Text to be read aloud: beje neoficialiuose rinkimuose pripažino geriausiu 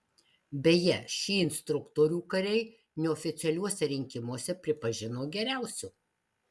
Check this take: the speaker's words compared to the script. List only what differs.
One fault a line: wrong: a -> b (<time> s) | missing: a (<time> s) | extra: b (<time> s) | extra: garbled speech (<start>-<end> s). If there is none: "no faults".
extra: šį instruktorių kariai (1.1 s)